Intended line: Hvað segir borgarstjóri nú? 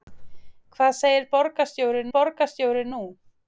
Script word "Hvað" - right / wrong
right